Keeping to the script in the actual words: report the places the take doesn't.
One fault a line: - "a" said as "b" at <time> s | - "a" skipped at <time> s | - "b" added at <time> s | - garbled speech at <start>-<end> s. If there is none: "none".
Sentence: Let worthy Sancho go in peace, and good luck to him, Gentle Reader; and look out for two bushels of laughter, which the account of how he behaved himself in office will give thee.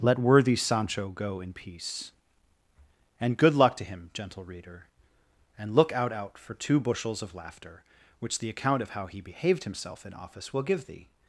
- "out" added at 6.1 s